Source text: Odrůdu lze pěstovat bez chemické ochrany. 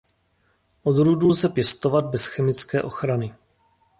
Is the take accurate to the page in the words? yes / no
yes